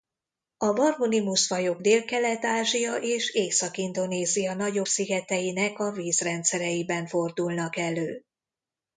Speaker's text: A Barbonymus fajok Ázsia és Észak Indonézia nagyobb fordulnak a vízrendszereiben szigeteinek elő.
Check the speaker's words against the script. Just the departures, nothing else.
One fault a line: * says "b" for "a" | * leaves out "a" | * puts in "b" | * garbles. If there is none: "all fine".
* puts in "Délkelet"
* says "szigeteinek" for "fordulnak"
* says "fordulnak" for "szigeteinek"